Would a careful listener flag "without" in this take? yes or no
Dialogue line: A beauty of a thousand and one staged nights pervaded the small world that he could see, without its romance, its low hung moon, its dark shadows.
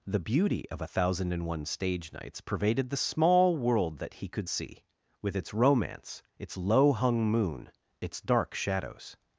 yes